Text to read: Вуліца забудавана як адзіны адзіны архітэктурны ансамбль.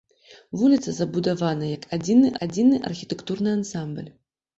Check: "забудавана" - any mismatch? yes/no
no